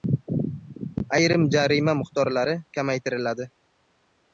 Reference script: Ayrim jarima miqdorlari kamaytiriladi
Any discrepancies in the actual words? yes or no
no